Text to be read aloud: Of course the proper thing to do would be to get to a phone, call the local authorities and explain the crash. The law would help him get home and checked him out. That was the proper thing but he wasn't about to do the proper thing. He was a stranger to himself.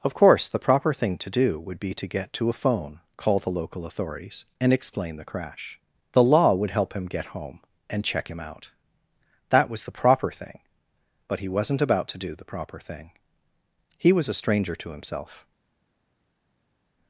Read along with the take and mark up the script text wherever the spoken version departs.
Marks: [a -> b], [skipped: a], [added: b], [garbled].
Of course the proper thing to do would be to get to a phone, call the local authorities and explain the crash. The law would help him get home and [checked -> check] him out. That was the proper thing but he wasn't about to do the proper thing. He was a stranger to himself.